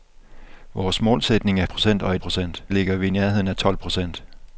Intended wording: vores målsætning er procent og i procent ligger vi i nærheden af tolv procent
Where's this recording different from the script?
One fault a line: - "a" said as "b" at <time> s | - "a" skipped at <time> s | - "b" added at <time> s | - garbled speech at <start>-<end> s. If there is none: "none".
none